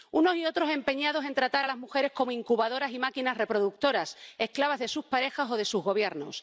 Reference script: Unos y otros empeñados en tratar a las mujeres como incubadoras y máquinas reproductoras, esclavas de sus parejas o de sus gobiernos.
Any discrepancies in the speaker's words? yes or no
no